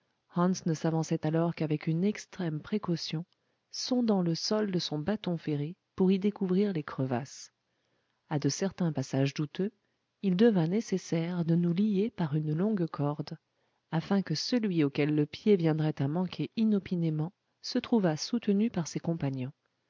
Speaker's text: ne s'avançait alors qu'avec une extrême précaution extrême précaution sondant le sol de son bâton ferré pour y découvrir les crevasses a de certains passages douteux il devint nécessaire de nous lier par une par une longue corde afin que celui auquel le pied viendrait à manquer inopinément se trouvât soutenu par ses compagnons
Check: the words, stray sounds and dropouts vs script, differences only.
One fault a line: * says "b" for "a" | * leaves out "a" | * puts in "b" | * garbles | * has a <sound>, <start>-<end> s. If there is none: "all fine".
* leaves out "extrême précaution"
* leaves out "par une"